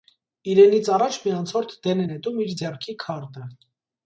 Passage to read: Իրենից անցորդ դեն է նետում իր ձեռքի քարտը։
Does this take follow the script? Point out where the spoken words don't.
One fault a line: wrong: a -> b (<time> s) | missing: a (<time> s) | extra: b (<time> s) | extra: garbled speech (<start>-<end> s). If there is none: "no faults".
extra: առաջ մի (0.9 s)